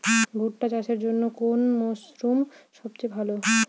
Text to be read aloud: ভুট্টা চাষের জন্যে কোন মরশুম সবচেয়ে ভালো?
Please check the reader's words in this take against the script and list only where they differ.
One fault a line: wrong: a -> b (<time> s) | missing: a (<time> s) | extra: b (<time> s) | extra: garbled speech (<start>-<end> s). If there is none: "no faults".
no faults